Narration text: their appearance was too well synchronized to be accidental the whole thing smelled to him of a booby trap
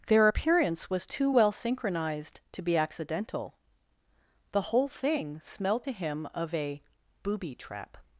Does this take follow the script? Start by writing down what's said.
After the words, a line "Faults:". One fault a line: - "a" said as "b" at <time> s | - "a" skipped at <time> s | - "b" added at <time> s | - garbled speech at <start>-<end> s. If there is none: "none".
their appearance was too well synchronized to be accidental the whole thing smelled to him of a booby trap
Faults:
none